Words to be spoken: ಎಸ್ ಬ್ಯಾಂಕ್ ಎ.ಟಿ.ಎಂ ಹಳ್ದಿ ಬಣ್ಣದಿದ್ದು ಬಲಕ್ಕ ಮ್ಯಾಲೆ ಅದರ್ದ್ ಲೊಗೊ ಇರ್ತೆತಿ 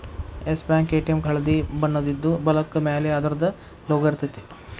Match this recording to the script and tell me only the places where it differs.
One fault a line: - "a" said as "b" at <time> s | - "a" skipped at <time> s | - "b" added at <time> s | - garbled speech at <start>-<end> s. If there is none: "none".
none